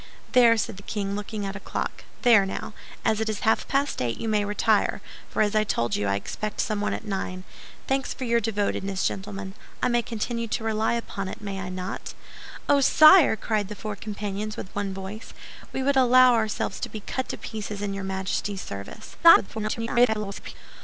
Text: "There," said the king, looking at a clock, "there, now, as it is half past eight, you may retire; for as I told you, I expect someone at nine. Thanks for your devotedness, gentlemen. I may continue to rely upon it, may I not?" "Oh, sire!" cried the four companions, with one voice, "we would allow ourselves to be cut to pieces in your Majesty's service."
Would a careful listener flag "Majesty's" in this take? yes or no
no